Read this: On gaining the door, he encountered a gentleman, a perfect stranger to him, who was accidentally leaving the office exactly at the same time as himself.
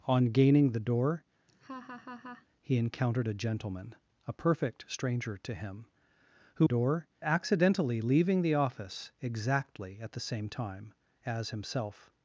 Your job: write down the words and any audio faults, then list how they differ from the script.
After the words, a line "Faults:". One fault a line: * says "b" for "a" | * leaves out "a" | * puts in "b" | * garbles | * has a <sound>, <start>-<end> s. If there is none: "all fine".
On gaining the door, he encountered a gentleman, a perfect stranger to him, who door accidentally leaving the office exactly at the same time as himself.
Faults:
* has a laugh, 1.5-2.5 s
* says "door" for "was"